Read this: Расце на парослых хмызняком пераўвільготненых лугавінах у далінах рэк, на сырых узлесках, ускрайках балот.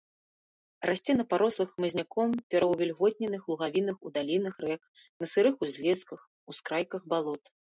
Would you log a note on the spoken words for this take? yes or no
no